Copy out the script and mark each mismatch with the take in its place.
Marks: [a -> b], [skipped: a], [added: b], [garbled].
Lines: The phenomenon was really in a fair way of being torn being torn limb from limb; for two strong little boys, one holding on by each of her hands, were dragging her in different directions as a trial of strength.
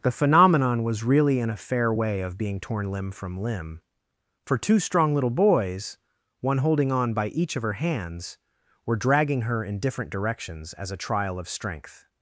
The phenomenon was really in a fair way of being torn [skipped: being torn] limb from limb; for two strong little boys, one holding on by each of her hands, were dragging her in different directions as a trial of strength.